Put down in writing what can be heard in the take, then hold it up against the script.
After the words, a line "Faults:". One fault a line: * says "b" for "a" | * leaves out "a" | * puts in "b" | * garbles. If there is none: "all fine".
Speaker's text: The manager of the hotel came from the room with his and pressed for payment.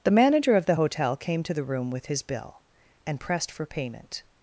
The manager of the hotel came to the room with his bill and pressed for payment.
Faults:
* says "to" for "from"
* puts in "bill"